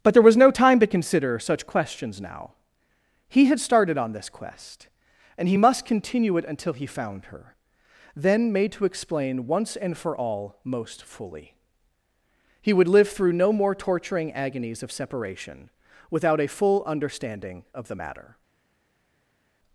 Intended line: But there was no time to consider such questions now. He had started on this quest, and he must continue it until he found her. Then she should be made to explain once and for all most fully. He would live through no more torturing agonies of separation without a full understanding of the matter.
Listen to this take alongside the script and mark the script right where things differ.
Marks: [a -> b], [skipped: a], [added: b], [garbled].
But there was no time to consider such questions now. He had started on this quest, and he must continue it until he found her. Then [skipped: she should be] made to explain once and for all most fully. He would live through no more torturing agonies of separation without a full understanding of the matter.